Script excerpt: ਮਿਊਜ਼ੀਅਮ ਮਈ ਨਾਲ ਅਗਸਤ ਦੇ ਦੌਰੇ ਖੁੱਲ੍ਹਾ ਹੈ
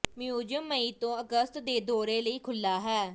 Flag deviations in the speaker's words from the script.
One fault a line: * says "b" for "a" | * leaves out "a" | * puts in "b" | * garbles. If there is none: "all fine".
* says "ਤੋਂ" for "ਨਾਲ"
* puts in "ਲਈ"